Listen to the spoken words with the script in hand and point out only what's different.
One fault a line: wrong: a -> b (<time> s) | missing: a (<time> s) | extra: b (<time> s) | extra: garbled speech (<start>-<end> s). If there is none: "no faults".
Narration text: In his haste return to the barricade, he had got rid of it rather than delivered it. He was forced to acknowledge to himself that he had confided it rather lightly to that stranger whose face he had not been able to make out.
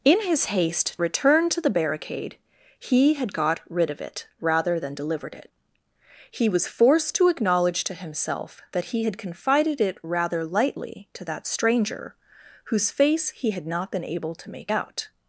no faults